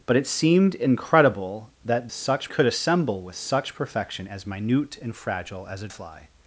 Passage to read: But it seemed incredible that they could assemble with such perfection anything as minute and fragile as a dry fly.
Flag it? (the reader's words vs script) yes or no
yes